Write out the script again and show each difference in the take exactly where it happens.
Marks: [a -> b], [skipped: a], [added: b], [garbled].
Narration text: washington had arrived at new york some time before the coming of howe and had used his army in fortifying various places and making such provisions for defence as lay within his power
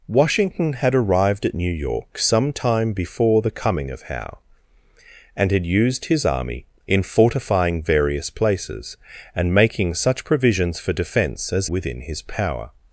washington had arrived at new york some time before the coming of howe and had used his army in fortifying various places and making such provisions for defence as [skipped: lay] within his power